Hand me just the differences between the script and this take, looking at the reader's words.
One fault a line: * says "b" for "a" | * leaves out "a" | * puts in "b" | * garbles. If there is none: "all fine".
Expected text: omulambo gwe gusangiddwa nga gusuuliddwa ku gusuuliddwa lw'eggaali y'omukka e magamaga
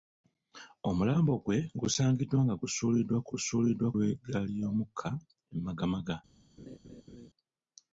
all fine